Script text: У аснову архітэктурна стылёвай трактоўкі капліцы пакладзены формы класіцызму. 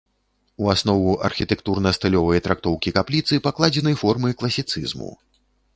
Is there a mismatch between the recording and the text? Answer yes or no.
no